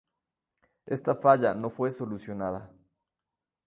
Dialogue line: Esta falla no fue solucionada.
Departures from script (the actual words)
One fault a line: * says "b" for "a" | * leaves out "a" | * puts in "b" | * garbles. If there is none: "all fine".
all fine